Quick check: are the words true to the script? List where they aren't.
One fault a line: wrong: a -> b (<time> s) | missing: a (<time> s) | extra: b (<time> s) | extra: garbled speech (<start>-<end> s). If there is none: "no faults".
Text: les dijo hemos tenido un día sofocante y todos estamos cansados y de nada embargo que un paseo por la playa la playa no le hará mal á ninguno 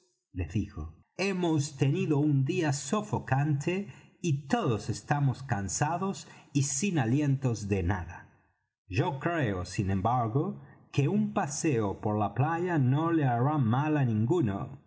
extra: sin alientos (6.6 s)
extra: yo creo sin (8.9 s)
missing: la playa (12.8 s)